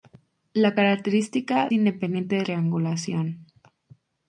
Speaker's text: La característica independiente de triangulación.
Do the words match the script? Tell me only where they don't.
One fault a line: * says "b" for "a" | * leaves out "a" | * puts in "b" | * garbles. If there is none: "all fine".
all fine